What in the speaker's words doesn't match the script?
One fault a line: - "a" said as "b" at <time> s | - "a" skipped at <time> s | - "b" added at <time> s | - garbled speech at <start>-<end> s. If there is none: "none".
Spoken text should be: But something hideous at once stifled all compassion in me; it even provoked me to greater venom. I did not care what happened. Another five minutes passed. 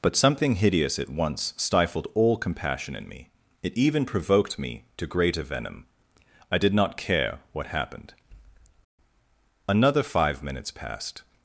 none